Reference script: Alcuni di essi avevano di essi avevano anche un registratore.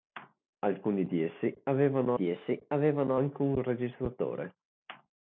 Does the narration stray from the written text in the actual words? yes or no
no